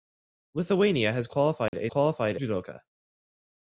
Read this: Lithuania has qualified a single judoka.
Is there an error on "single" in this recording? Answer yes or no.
yes